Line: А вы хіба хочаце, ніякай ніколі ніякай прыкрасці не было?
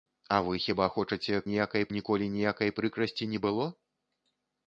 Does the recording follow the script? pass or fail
pass